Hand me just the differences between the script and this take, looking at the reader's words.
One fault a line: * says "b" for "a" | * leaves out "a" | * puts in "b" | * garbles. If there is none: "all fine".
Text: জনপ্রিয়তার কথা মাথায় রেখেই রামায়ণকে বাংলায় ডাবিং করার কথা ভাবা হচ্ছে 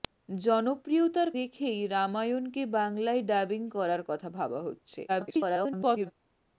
* leaves out "কথা মাথায়"
* garbles